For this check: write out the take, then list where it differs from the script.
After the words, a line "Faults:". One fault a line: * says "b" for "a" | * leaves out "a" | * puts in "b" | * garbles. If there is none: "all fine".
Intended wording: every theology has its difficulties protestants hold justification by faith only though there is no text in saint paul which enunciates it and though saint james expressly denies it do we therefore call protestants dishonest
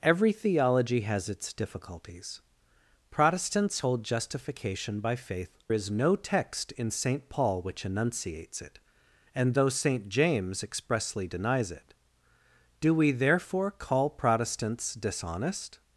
every theology has its difficulties protestants hold justification by faith is no text in saint paul which enunciates it and though saint james expressly denies it do we therefore call protestants dishonest
Faults:
* leaves out "only though there"